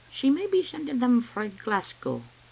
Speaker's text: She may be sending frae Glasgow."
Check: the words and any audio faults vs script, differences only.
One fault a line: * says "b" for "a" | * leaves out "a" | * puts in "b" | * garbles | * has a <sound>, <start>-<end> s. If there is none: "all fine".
* puts in "them"